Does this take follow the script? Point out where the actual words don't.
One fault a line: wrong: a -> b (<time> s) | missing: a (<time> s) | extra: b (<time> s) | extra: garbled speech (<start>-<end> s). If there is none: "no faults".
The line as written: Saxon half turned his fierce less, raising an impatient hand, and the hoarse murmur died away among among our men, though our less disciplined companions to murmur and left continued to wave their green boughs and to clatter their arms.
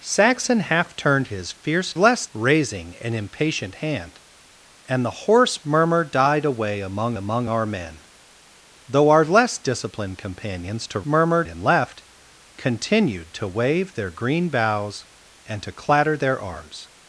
no faults